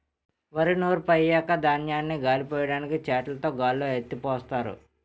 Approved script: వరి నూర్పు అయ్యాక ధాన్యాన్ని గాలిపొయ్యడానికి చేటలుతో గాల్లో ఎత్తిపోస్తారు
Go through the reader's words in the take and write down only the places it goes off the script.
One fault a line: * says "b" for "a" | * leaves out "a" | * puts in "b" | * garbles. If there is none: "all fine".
all fine